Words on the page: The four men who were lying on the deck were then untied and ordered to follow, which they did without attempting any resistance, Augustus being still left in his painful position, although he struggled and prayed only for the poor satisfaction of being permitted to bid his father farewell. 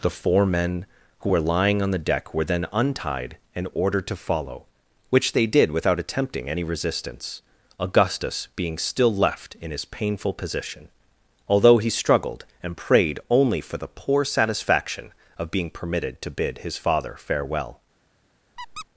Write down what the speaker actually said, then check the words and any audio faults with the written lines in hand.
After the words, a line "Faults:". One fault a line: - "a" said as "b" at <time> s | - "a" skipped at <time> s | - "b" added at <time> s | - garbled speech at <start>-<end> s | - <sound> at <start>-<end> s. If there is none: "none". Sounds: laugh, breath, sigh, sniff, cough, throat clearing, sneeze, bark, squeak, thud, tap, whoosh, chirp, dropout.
The four men who were lying on the deck were then untied and ordered to follow, which they did without attempting any resistance, Augustus being still left in his painful position, although he struggled and prayed only for the poor satisfaction of being permitted to bid his father farewell.
Faults:
- squeak at 18.6-18.9 s